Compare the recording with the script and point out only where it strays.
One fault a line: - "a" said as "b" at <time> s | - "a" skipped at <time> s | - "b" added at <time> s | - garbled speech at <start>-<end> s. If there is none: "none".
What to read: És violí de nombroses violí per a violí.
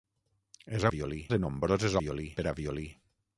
none